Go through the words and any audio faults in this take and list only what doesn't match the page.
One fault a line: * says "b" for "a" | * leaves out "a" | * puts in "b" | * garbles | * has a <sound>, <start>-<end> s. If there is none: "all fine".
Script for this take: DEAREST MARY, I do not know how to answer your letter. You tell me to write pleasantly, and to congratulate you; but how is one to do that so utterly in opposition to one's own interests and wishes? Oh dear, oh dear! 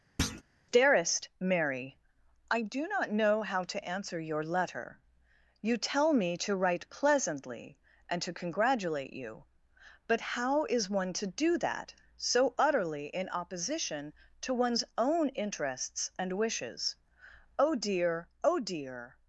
* has a thud, 0.2-0.4 s